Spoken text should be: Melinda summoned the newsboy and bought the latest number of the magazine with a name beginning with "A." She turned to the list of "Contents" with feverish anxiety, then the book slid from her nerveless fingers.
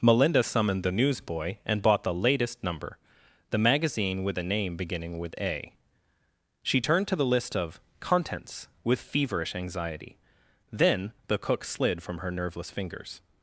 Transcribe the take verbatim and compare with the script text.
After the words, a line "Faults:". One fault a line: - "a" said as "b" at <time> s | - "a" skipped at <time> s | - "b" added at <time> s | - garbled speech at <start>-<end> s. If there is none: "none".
Melinda summoned the newsboy and bought the latest number the magazine with a name beginning with "A." She turned to the list of "Contents" with feverish anxiety, then the cook slid from her nerveless fingers.
Faults:
- "of" skipped at 3.0 s
- "book" said as "cook" at 11.4 s